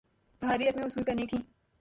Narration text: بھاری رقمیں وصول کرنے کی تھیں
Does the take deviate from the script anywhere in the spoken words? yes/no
no